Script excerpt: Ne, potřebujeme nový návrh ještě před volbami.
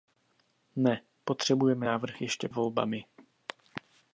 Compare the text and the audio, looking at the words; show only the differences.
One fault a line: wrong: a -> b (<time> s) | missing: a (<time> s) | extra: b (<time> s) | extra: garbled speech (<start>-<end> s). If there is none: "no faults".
missing: nový (1.9 s)
missing: před (2.5 s)